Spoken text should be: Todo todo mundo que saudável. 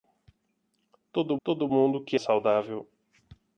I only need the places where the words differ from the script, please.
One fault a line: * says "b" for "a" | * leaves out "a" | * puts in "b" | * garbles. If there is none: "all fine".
all fine